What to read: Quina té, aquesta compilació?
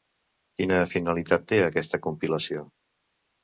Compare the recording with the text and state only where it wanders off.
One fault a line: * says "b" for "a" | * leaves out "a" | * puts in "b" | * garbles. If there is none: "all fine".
* puts in "finalitat"